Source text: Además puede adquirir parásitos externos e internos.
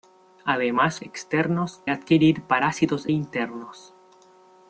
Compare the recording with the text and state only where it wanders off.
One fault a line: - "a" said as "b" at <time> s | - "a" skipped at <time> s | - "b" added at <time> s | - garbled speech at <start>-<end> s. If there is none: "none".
- "puede" said as "externos" at 1.0 s
- "externos e" skipped at 3.1 s